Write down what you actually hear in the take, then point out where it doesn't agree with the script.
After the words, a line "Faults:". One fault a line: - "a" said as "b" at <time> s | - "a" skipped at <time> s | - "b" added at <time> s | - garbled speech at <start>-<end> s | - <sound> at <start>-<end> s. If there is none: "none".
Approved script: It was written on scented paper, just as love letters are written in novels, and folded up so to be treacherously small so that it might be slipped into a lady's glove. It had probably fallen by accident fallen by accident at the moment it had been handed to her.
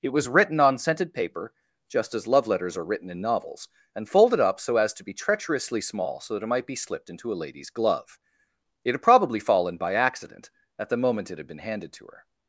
It was written on scented paper, just as love letters are written in novels, and folded up so as to be treacherously small so that it might be slipped into a lady's glove. It had probably fallen by accident at the moment it had been handed to her.
Faults:
- "as" added at 4.8 s
- "fallen by accident" skipped at 10.5 s